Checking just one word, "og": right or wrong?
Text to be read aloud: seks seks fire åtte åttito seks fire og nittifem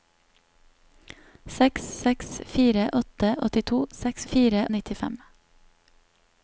right